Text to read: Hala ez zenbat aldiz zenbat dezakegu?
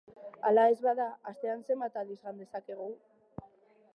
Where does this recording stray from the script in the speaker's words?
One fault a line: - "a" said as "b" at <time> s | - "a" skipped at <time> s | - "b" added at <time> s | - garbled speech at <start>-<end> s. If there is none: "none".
- "bada astean" added at 0.8 s
- "zenbat" said as "jan" at 2.2 s